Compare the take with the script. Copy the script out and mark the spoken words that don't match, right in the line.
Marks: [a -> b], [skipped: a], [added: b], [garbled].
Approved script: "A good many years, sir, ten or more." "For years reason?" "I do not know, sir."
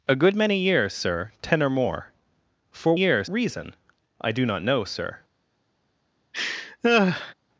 "A good many years, sir, ten or more." "For years reason?" "I do not know, sir."